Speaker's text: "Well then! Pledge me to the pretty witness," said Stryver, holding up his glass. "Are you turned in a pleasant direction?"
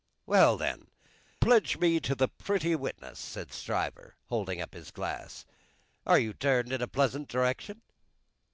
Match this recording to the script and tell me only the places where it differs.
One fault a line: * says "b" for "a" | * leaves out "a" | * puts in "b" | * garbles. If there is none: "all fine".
all fine